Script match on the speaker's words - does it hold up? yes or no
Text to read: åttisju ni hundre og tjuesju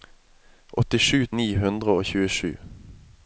yes